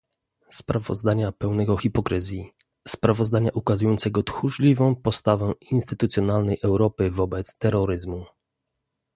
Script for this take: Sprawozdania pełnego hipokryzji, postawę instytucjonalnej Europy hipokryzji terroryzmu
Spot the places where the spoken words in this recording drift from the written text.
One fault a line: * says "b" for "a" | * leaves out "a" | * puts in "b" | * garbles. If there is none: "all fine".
* puts in "sprawozdania ukazującego tchórzliwą"
* says "wobec" for "hipokryzji"